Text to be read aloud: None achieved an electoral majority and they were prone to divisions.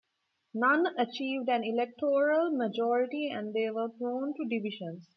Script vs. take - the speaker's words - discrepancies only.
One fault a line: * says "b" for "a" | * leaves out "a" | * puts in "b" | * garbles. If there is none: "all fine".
all fine